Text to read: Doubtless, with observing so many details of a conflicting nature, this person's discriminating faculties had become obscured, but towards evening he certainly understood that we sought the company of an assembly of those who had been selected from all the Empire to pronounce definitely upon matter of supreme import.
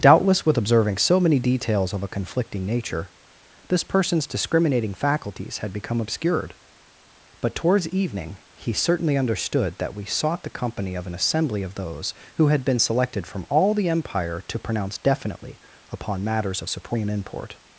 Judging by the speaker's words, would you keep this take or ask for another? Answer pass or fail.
fail